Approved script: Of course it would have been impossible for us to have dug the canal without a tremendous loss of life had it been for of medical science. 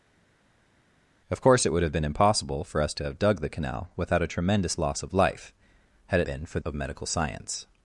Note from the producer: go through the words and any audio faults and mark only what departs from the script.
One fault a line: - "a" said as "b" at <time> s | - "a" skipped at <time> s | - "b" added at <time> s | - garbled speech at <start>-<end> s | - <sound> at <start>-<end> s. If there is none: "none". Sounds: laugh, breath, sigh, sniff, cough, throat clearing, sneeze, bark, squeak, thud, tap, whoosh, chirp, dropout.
none